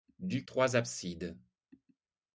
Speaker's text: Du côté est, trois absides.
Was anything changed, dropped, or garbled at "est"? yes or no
yes